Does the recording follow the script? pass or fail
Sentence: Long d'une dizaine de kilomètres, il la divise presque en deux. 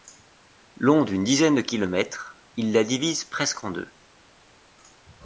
pass